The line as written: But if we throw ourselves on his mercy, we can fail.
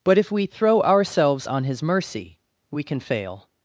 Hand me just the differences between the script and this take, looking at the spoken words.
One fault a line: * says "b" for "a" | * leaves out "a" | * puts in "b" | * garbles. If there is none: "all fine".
all fine